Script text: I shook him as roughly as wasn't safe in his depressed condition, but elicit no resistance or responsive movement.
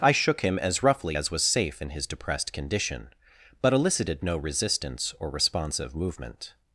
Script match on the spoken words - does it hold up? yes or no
no